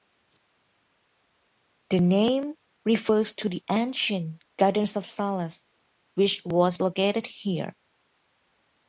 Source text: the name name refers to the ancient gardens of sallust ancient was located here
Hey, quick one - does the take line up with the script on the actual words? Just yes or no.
no